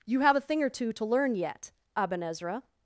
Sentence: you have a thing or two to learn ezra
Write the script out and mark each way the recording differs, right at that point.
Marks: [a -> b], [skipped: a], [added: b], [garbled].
you have a thing or two to learn [added: yet aben] ezra